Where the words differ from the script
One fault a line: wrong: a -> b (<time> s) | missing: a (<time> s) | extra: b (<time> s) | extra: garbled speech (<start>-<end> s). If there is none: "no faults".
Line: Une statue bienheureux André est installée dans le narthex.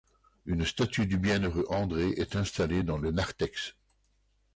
extra: du (1.1 s)